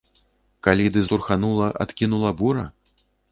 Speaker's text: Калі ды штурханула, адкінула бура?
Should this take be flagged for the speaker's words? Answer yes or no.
no